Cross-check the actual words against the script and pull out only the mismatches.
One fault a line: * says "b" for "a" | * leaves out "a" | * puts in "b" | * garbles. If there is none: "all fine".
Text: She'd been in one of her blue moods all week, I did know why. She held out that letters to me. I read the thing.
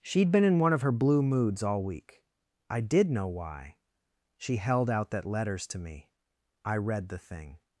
all fine